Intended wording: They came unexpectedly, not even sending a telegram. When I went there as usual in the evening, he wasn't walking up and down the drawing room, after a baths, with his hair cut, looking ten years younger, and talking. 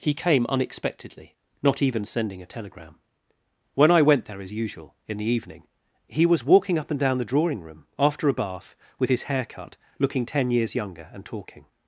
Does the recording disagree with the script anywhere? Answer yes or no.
yes